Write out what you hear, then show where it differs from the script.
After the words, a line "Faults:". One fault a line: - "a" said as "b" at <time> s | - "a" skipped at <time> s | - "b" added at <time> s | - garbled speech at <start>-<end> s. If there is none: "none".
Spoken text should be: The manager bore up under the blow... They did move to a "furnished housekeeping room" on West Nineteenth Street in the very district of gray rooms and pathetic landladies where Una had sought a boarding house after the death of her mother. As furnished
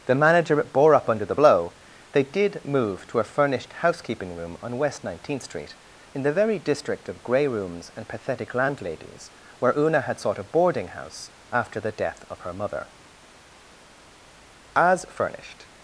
The manager bore up under the blow... They did move to a "furnished housekeeping room" on West Nineteenth Street in the very district of gray rooms and pathetic landladies where Una had sought a boarding house after the death of her mother. As furnished
Faults:
none